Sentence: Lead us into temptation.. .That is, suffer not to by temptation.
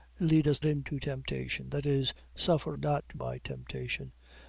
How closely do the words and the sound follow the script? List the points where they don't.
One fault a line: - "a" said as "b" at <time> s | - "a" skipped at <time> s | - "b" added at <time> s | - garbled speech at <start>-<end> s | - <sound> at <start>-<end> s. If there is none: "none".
none